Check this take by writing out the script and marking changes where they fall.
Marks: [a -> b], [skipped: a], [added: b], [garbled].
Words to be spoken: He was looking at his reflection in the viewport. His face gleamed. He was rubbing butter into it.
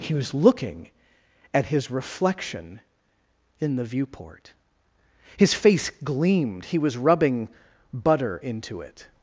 He was looking at his reflection in the viewport. His face gleamed. He was rubbing butter into it.